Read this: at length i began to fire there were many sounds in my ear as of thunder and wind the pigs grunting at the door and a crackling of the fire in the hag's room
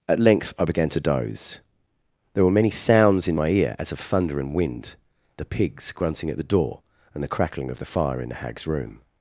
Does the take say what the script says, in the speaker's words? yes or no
no